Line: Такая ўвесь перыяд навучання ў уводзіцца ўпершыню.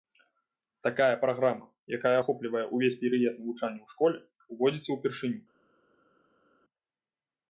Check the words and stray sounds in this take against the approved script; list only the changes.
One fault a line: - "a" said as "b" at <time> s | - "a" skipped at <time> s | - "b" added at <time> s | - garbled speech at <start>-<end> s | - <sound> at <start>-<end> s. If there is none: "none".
- "праграма якая ахоплівае" added at 1.2 s
- "школе" added at 4.0 s